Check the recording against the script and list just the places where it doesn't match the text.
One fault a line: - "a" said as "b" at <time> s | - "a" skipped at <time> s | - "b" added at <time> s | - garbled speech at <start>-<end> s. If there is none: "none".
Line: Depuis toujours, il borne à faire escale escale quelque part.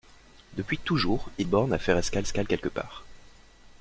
none